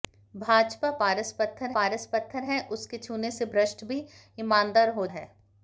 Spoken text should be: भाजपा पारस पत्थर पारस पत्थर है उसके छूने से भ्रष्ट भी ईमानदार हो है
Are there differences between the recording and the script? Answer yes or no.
no